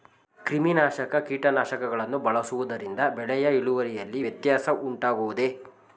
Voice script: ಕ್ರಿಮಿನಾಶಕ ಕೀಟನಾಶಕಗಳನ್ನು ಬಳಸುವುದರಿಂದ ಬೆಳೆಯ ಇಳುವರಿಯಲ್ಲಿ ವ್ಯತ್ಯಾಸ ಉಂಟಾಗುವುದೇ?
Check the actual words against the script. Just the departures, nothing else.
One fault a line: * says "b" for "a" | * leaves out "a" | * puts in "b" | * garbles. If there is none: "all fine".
all fine